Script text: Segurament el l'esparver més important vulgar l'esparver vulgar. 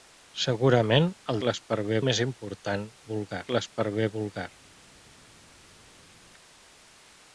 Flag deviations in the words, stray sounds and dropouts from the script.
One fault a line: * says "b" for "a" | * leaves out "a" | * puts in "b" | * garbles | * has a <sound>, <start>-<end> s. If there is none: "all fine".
all fine